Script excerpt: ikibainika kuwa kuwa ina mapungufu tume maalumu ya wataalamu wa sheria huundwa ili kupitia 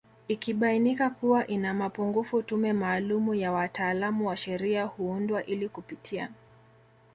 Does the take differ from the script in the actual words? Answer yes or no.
yes